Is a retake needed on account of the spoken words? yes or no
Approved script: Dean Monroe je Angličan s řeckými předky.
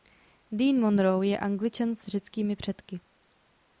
no